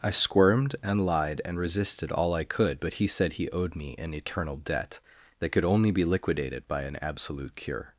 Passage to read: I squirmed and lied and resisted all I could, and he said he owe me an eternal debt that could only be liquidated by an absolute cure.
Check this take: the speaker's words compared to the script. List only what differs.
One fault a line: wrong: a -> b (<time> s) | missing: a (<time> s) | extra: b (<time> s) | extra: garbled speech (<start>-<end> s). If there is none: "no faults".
wrong: and -> but (2.8 s)
wrong: owe -> owed (3.5 s)